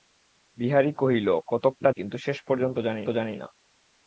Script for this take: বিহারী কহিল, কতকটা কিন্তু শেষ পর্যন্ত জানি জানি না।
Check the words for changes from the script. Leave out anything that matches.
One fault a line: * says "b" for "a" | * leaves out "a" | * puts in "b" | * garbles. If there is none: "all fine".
all fine